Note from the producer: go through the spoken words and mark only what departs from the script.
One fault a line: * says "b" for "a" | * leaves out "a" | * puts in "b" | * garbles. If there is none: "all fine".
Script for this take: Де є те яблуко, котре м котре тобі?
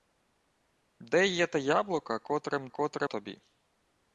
all fine